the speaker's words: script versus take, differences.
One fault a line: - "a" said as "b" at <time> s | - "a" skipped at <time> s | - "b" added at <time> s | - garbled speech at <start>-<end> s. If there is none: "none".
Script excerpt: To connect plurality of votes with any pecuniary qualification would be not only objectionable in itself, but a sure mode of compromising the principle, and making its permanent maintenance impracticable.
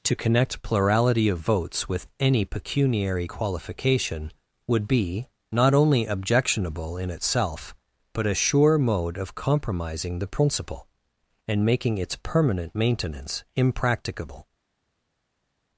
none